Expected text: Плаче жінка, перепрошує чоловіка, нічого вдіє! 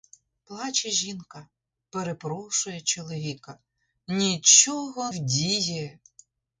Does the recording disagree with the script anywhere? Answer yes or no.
no